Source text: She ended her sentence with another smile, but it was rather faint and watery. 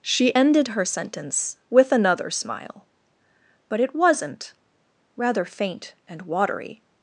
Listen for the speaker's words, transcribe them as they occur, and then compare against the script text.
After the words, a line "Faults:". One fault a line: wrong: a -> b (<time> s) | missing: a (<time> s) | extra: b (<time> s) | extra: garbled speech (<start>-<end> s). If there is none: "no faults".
She ended her sentence with another smile, but it wasn't rather faint and watery.
Faults:
wrong: was -> wasn't (3.9 s)